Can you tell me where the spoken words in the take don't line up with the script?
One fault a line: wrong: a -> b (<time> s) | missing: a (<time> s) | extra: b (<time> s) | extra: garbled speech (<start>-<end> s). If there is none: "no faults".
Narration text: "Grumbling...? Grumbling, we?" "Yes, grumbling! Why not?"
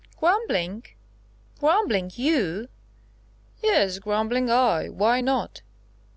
wrong: we -> you (2.1 s)
extra: I (4.5 s)